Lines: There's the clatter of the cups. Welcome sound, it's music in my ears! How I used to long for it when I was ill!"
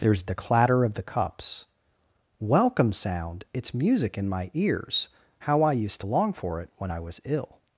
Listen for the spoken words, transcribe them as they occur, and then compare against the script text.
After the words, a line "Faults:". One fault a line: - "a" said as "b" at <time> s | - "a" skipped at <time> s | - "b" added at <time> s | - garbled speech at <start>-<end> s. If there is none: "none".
There's the clatter of the cups. Welcome sound, it's music in my ears! How I used to long for it when I was ill!"
Faults:
none